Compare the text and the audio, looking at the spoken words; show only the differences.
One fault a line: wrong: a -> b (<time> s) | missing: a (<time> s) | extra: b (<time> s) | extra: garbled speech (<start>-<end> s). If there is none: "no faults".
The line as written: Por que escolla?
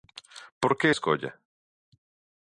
no faults